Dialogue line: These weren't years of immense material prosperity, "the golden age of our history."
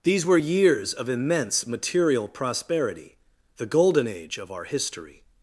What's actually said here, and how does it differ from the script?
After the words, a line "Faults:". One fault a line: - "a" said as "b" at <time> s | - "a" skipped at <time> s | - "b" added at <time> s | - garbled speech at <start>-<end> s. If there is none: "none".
These were years of immense material prosperity, "the golden age of our history."
Faults:
- "weren't" said as "were" at 0.2 s